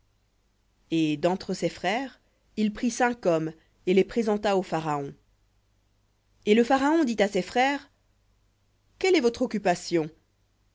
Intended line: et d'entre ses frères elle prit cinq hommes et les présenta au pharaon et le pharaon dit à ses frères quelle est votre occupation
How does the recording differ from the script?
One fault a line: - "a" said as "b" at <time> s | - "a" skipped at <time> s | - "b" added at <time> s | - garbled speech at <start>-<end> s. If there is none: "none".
- "elle" said as "il" at 2.6 s